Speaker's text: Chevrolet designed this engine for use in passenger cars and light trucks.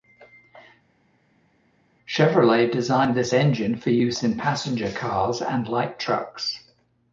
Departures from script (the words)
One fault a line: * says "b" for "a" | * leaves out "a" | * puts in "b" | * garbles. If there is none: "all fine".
all fine